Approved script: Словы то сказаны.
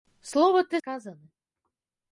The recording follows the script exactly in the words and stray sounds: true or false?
true